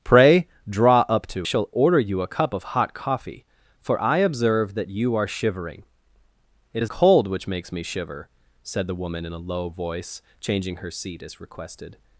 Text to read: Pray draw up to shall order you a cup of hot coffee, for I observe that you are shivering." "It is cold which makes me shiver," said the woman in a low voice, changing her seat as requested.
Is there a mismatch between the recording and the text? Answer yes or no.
no